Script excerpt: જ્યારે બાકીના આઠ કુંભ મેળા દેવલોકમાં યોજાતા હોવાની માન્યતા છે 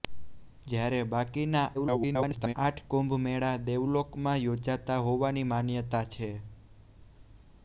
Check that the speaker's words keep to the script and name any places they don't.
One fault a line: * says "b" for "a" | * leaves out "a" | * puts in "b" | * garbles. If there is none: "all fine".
* garbles